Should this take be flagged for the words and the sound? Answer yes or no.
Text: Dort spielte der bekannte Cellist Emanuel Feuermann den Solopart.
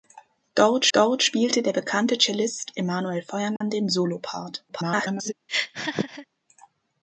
yes